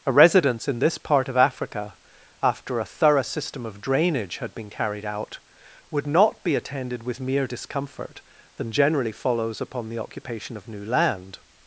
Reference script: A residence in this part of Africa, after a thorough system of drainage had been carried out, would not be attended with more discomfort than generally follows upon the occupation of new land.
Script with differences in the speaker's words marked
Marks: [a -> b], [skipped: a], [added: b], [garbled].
A residence in this part of Africa, after a thorough system of drainage had been carried out, would not be attended with [more -> mere] discomfort than generally follows upon the occupation of new land.